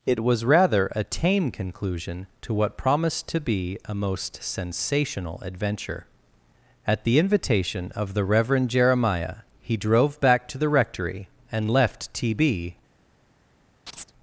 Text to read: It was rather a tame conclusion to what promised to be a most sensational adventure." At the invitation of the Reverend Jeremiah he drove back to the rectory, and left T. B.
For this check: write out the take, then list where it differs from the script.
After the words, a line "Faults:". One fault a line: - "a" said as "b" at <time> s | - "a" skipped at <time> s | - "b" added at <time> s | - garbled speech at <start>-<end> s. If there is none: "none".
It was rather a tame conclusion to what promised to be a most sensational adventure." At the invitation of the Reverend Jeremiah he drove back to the rectory, and left T. B.
Faults:
none